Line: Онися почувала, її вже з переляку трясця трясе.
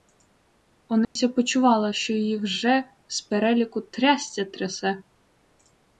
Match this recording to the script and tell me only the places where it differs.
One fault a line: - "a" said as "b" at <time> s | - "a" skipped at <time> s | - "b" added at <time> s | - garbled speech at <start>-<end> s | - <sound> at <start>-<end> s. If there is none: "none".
- dropout at 1.0-1.2 s
- "що" added at 1.9 s